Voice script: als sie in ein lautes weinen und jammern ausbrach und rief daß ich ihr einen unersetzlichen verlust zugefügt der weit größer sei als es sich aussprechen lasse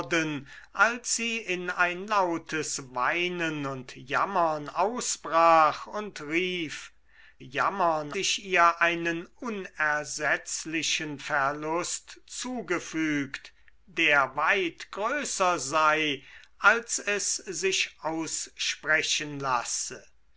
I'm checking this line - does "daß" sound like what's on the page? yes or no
no